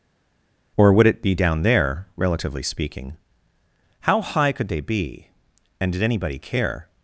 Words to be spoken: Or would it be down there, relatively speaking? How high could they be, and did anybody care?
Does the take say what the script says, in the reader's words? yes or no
yes